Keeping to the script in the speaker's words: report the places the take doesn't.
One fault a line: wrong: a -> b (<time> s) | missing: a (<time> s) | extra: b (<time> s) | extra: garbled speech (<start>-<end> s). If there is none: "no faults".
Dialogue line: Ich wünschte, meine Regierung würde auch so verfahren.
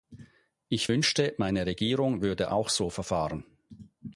no faults